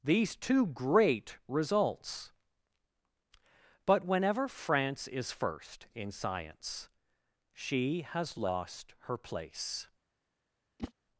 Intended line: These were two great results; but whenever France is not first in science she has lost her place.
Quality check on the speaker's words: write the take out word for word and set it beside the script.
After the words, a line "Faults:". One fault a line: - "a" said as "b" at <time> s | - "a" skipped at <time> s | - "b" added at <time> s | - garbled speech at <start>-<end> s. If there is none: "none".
These two great results; but whenever France is first in science she has lost her place.
Faults:
- "were" skipped at 0.3 s
- "not" skipped at 5.3 s